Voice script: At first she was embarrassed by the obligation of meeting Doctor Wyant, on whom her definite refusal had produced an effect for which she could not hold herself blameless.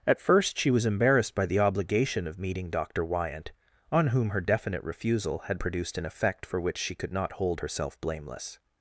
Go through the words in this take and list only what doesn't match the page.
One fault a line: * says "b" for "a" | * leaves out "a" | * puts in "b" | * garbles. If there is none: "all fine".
all fine